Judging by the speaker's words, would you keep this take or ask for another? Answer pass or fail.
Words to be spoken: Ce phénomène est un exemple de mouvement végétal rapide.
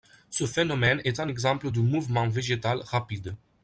pass